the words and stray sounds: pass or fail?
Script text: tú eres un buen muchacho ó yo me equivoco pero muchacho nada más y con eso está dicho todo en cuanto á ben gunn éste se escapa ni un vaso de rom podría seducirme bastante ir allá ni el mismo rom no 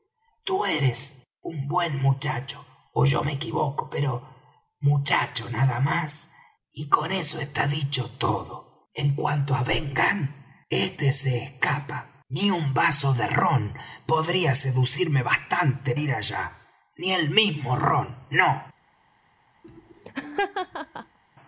fail